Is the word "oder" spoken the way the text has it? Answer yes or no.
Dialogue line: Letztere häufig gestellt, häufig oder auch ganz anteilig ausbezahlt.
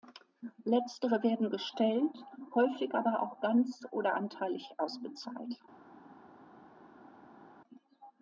no